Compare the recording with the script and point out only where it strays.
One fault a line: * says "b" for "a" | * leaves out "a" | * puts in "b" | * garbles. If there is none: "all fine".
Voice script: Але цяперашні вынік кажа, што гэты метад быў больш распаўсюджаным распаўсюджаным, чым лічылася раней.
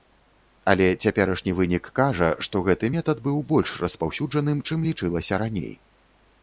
* leaves out "распаўсюджаным"